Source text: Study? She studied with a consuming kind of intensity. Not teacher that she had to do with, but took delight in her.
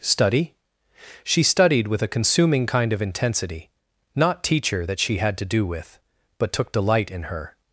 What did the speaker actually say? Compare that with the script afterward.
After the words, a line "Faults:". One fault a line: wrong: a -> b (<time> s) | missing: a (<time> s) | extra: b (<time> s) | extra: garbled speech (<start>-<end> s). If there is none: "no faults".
Study? She studied with a consuming kind of intensity. Not teacher that she had to do with, but took delight in her.
Faults:
no faults